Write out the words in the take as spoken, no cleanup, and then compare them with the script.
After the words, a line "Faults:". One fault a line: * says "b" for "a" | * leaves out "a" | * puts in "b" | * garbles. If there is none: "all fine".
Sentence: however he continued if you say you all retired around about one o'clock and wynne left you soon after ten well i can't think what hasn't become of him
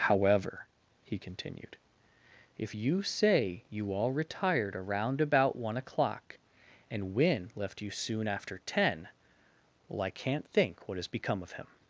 however he continued if you say you all retired around about one o'clock and wynne left you soon after ten well i can't think what has become of him
Faults:
* says "has" for "hasn't"